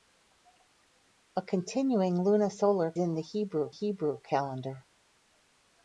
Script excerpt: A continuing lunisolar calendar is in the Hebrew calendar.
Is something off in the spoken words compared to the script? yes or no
yes